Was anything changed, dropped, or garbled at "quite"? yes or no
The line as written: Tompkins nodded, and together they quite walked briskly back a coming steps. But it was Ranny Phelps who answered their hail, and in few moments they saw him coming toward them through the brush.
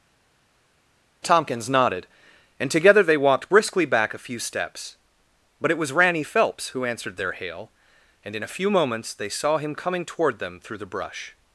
yes